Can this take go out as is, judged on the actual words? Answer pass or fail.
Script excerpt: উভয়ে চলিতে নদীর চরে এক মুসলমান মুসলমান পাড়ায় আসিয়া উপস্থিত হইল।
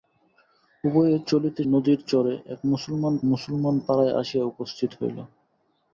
pass